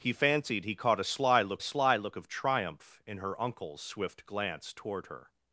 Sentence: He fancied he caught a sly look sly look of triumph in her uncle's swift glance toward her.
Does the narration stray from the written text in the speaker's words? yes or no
no